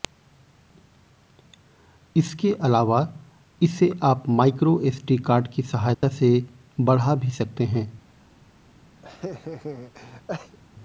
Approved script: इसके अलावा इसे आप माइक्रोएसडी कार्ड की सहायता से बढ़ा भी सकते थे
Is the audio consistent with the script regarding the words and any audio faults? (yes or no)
no